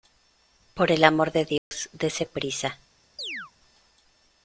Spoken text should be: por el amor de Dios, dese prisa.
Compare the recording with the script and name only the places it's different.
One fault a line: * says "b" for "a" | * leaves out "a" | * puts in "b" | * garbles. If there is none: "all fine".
all fine